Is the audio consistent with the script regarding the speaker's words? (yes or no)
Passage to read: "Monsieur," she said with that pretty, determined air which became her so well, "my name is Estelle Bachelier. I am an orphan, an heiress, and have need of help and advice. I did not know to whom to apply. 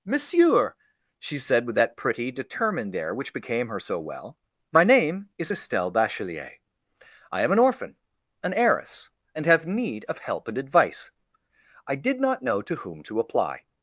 yes